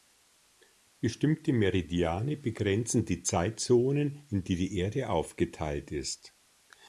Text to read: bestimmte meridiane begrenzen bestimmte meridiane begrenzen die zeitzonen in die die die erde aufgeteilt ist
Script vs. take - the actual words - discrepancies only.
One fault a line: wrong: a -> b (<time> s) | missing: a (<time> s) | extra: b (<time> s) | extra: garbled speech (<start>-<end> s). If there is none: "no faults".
missing: bestimmte meridiane begrenzen (3.0 s)
missing: die (4.8 s)